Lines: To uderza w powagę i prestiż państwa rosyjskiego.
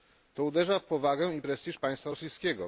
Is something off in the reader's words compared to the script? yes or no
no